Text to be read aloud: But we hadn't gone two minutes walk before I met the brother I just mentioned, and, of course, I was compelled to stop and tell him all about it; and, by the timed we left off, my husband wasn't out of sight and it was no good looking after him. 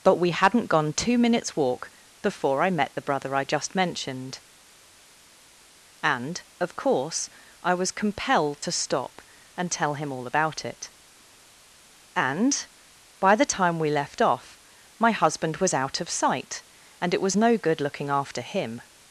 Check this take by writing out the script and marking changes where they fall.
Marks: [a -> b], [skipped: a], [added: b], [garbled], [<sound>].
But we hadn't gone two minutes walk before I met the brother I just mentioned, and, of course, I was compelled to stop and tell him all about it; and, by the [timed -> time] we left off, my husband [wasn't -> was] out of sight and it was no good looking after him.